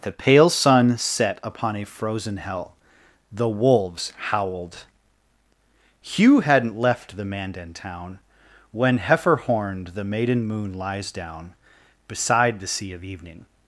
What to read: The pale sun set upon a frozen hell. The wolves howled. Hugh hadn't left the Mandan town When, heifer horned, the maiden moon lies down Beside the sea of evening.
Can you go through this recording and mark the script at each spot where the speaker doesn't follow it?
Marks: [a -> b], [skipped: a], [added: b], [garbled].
The pale sun set upon a frozen hell. The wolves howled. Hugh hadn't left the Mandan town When, heifer horned, the maiden moon lies down Beside the sea of evening.